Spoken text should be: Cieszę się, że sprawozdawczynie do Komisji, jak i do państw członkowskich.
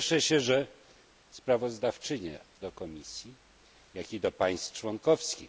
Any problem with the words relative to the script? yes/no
no